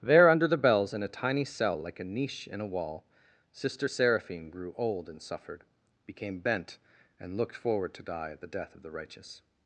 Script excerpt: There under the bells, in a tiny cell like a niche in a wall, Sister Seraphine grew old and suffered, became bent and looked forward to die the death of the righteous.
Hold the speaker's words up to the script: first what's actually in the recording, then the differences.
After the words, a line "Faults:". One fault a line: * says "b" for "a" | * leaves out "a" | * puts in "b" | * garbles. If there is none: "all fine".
There under the bells, in a tiny cell like a niche in a wall, Sister Seraphine grew old and suffered, became bent and looked forward to die at the death of the righteous.
Faults:
* puts in "at"